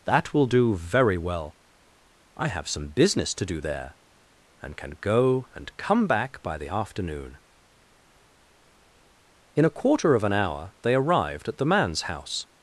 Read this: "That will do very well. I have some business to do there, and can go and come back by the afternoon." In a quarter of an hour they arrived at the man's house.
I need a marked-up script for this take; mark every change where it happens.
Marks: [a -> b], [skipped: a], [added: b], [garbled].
"That will do very well. I have some business to do there, and can go and come back by the afternoon." In a quarter of an hour they arrived at the man's house.